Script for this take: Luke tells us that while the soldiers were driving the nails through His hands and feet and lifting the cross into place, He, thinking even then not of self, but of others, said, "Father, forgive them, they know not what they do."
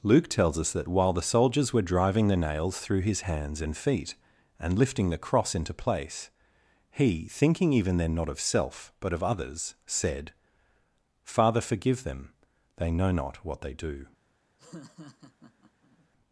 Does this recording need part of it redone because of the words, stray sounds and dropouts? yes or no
yes